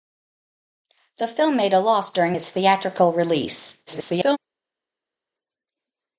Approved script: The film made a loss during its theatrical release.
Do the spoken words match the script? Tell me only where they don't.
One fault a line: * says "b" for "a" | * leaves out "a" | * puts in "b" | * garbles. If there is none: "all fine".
* garbles